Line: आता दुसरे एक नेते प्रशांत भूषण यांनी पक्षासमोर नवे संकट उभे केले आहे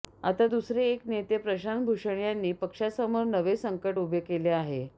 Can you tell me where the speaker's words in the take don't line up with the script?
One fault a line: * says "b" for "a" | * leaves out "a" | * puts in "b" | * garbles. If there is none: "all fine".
all fine